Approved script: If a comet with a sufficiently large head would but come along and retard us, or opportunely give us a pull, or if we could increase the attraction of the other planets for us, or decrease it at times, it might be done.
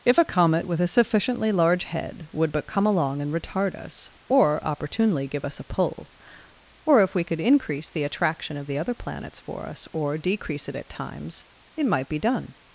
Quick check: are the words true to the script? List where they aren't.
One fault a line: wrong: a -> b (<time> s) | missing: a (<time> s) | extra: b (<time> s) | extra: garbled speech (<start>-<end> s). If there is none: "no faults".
no faults